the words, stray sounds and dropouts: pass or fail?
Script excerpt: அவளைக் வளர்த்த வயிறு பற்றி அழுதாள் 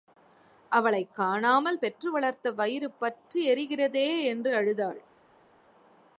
fail